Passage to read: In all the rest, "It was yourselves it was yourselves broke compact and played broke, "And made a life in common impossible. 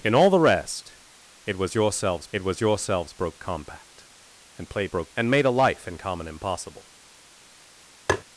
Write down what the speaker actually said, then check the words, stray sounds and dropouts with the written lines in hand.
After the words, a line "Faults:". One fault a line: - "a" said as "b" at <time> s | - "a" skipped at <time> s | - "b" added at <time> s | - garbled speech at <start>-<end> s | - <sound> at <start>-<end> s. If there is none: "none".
In all the rest, "It was yourselves it was yourselves broke compact and played broke, "And made a life in common impossible.
Faults:
- tap at 8.1-8.2 s